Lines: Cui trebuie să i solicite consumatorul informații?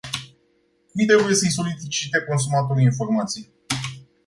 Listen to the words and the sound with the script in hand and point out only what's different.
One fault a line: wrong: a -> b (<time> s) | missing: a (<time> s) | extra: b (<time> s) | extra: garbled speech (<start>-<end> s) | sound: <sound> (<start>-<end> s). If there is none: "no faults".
no faults